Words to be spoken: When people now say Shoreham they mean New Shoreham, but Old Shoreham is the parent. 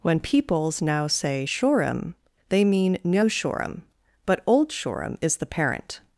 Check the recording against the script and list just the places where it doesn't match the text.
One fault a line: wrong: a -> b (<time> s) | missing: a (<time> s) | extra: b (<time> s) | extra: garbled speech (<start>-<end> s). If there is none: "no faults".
wrong: people -> peoples (0.2 s)